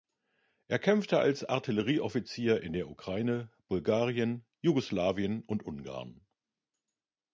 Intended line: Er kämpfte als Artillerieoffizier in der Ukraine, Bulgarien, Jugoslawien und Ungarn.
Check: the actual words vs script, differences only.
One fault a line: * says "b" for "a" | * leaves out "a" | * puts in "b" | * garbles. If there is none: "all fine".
all fine